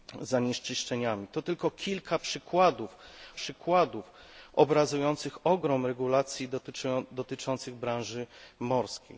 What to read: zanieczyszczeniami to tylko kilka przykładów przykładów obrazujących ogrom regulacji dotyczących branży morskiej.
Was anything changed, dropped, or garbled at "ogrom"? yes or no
no